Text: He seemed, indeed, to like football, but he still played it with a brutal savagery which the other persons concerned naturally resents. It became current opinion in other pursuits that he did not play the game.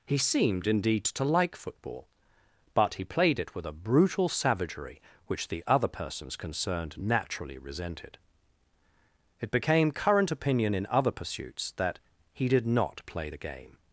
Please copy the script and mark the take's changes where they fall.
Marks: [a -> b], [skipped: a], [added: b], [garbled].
He seemed, indeed, to like football, but he [skipped: still] played it with a brutal savagery which the other persons concerned naturally [resents. -> resented] It became current opinion in other pursuits that he did not play the game.